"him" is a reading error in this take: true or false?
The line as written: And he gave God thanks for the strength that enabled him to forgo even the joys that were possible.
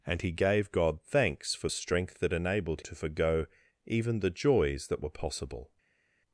true